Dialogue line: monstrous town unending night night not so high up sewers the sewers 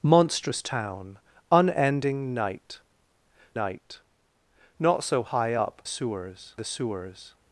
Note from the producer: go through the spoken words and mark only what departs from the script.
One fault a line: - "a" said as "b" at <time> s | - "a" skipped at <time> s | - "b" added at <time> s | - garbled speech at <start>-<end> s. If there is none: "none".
none